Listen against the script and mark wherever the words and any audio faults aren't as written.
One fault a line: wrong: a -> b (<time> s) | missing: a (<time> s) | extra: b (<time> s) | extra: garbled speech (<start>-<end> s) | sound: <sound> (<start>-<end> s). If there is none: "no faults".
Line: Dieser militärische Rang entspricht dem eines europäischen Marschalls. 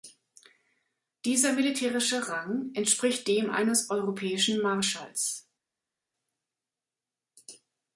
no faults